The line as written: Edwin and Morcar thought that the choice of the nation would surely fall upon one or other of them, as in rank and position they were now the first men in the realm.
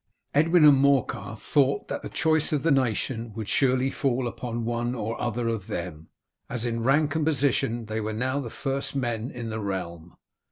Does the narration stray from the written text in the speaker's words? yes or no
no